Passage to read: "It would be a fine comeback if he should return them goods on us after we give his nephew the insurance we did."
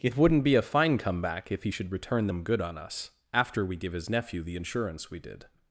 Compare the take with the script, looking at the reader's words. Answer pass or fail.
fail